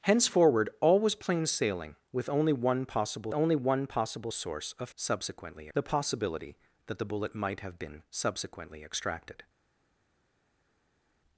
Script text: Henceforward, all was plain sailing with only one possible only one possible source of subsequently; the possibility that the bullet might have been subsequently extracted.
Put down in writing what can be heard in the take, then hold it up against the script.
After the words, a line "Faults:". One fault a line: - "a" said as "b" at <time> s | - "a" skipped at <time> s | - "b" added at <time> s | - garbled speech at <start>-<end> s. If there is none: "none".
Henceforward, all was plain sailing with only one possible only one possible source of subsequently; the possibility that the bullet might have been subsequently extracted.
Faults:
none